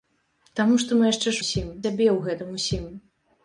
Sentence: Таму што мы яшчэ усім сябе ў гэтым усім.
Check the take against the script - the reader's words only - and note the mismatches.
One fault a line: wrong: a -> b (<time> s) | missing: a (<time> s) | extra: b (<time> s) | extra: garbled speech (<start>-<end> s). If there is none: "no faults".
no faults